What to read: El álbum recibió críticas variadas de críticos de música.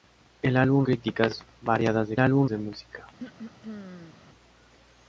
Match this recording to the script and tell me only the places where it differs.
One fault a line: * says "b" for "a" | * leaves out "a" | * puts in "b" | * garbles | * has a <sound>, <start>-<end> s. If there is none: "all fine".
* leaves out "recibió"
* says "álbum" for "críticos"
* has a throat clearing, 3.2-4.1 s